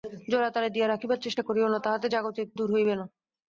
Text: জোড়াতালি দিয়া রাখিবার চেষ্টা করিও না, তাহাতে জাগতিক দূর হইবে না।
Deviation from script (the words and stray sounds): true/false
false